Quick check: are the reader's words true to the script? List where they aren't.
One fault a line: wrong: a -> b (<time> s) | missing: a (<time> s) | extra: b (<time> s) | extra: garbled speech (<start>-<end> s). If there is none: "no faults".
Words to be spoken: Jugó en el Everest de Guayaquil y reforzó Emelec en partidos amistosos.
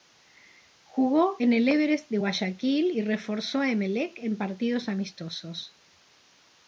extra: a (3.6 s)